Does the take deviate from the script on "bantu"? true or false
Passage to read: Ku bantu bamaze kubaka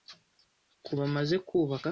true